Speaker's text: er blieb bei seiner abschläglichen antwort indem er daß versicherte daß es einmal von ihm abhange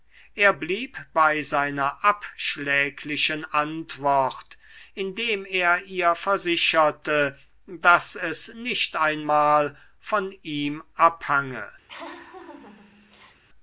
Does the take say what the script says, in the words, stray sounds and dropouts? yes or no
no